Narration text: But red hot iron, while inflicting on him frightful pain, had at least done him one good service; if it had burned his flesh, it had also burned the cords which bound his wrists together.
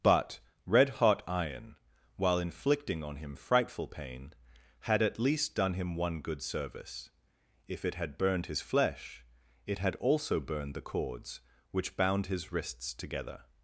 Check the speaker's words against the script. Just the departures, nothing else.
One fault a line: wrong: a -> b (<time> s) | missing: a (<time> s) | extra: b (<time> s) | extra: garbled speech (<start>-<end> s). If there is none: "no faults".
no faults